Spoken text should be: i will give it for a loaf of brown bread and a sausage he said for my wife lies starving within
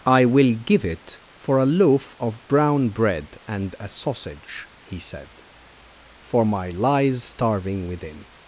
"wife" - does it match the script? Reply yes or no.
no